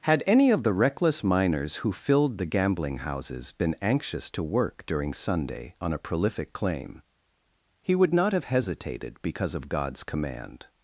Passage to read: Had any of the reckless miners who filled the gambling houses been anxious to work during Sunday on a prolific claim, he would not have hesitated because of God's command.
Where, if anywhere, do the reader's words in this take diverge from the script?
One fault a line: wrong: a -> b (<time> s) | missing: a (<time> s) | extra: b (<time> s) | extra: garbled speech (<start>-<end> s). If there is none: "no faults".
no faults